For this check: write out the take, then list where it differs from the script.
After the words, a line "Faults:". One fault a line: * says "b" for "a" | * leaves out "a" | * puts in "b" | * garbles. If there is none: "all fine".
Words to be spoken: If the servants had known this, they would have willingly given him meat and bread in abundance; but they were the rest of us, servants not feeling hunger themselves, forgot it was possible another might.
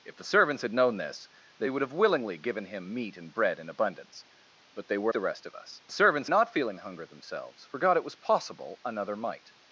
If the servants had known this, they would have willingly given him meat and bread in abundance; but they were the rest of us, servants not feeling hunger themselves, forgot it was possible another might.
Faults:
all fine